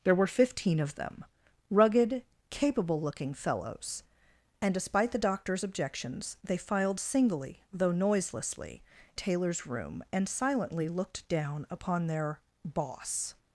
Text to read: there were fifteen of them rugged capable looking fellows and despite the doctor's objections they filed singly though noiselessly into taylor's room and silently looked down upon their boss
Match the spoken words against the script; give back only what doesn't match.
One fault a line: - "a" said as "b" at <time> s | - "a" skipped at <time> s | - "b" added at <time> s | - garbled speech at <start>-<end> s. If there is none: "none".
- "into" skipped at 8.8 s